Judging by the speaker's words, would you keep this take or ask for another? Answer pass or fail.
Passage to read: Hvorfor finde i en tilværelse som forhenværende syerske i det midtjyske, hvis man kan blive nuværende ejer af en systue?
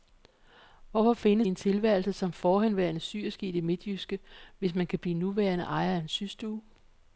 pass